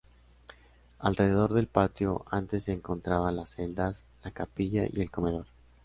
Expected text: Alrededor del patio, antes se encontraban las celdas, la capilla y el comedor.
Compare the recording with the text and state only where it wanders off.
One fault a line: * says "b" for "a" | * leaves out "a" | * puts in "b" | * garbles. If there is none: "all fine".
all fine